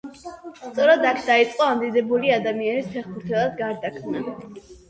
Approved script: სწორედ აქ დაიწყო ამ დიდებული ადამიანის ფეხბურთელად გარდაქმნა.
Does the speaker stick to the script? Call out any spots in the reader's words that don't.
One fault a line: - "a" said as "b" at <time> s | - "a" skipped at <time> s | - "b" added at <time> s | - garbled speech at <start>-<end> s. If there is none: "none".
none